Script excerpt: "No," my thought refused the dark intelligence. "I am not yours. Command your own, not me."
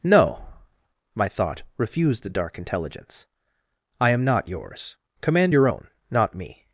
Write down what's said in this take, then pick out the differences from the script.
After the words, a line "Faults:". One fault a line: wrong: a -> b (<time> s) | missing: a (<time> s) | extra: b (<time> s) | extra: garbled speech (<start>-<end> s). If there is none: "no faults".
"No," my thought refused the dark intelligence. "I am not yours. Command your own, not me."
Faults:
no faults